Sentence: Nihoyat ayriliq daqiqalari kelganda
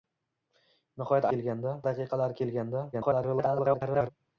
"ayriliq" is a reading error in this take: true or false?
true